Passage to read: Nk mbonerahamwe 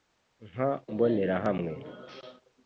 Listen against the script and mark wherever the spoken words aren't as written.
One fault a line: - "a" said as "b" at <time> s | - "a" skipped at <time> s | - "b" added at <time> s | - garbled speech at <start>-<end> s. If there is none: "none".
none